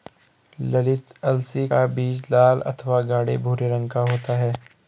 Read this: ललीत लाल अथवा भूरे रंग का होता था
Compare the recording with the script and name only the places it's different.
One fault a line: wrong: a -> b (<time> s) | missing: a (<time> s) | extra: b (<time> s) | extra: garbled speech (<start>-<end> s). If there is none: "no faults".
extra: अलसी का बीज (1.2 s)
extra: गाढ़े (3.1 s)
wrong: था -> है (4.4 s)